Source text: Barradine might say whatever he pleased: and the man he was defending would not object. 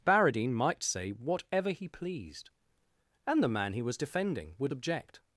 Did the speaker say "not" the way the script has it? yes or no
no